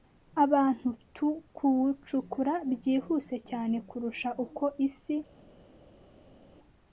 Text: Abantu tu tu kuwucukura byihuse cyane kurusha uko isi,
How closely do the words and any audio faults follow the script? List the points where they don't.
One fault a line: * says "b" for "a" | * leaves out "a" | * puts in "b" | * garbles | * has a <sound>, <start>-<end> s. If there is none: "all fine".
* leaves out "tu"